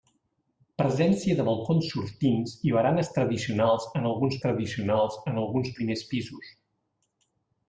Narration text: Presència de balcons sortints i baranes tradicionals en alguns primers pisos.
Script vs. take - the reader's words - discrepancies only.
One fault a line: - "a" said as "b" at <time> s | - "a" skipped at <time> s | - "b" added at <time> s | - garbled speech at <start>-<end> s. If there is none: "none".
- "tradicionals en alguns" added at 4.5 s